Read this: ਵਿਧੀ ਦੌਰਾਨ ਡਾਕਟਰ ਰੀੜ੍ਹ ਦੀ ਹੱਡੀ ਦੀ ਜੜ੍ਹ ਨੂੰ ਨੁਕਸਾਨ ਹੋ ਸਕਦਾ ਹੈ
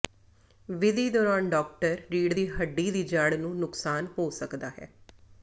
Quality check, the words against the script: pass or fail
pass